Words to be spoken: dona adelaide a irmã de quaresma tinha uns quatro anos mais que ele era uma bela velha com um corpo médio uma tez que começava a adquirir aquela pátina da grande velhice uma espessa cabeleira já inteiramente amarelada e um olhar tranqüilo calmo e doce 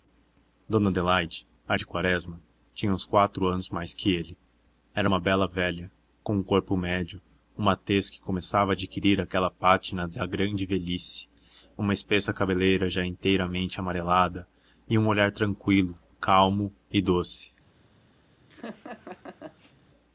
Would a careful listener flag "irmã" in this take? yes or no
yes